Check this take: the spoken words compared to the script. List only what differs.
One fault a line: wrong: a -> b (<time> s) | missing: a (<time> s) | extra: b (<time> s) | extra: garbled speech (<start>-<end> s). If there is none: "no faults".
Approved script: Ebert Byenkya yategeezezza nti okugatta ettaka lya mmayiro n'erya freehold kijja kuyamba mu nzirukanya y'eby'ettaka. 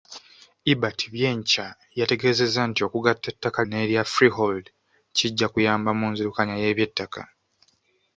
missing: lya mmayiro (3.6 s)